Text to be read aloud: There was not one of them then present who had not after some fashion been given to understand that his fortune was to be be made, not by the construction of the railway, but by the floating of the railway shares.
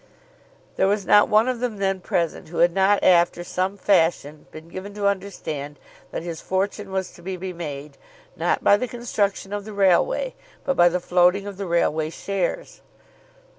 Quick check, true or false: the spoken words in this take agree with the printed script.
true